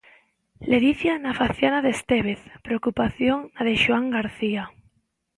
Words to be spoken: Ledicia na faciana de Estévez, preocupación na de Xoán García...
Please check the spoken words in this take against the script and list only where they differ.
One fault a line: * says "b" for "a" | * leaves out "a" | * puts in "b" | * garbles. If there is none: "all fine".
all fine